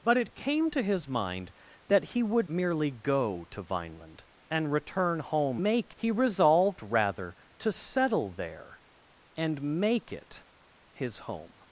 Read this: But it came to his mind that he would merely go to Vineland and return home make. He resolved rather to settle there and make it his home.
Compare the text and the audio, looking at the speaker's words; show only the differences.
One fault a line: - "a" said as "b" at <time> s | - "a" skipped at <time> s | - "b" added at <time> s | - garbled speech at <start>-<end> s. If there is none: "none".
none